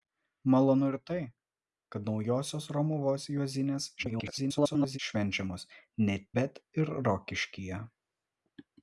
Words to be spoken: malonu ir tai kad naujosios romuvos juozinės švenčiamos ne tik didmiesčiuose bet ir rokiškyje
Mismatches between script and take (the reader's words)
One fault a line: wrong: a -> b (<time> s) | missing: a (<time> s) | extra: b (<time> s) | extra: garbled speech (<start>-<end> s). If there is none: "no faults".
extra: garbled speech (4.0-5.0 s)
missing: tik didmiesčiuose (6.2 s)